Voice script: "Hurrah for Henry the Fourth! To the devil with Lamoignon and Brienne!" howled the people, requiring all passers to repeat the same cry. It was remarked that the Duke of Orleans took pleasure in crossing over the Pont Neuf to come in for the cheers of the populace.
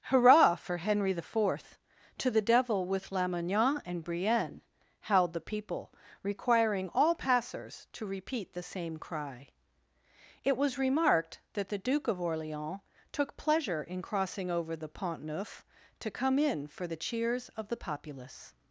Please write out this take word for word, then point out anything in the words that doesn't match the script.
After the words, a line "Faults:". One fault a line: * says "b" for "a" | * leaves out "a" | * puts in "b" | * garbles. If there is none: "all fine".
"Hurrah for Henry the Fourth! To the devil with Lamoignon and Brienne!" howled the people, requiring all passers to repeat the same cry. It was remarked that the Duke of Orleans took pleasure in crossing over the Pont Neuf to come in for the cheers of the populace.
Faults:
all fine